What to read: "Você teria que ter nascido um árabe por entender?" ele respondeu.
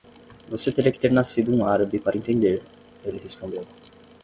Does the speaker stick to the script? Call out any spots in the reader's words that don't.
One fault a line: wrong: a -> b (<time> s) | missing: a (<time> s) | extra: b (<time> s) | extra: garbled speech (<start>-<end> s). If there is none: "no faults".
wrong: por -> para (2.0 s)